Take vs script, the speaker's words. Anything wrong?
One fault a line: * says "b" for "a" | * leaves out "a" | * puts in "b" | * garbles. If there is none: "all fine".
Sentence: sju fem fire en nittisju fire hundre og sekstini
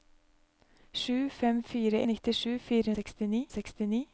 * leaves out "en"
* says "sekstini" for "hundre"